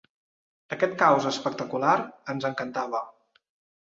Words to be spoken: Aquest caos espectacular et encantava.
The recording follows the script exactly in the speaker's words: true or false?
false